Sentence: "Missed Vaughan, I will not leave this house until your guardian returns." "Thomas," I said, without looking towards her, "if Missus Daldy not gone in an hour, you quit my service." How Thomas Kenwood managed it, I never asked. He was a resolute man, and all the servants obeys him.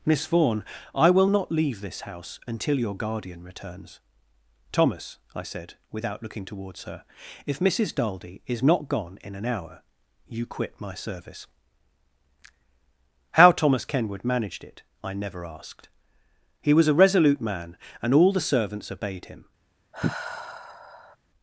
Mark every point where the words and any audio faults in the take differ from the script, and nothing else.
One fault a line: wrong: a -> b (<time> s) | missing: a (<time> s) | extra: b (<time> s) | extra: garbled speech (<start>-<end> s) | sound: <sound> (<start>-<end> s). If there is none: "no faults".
wrong: Missed -> Miss (0.1 s)
extra: is (8.5 s)
wrong: obeys -> obeyed (18.9 s)
sound: sigh (19.9-21.2 s)